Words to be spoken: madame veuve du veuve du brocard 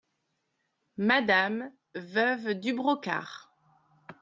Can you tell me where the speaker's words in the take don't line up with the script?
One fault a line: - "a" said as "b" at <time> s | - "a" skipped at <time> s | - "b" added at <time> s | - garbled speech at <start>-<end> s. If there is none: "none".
- "veuve du" skipped at 2.7 s